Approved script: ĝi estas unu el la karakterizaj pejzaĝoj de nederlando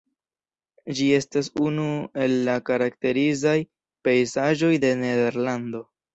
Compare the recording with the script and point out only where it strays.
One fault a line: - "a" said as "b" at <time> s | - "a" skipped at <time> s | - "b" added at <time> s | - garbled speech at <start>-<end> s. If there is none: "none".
none